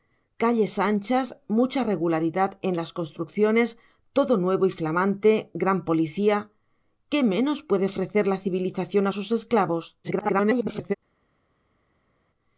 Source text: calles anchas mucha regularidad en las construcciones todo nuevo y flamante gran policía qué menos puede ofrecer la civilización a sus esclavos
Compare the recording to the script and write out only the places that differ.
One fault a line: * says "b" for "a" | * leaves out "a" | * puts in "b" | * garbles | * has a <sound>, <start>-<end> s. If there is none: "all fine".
* garbles